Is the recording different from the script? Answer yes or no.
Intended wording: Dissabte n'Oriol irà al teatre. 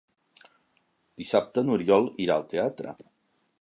no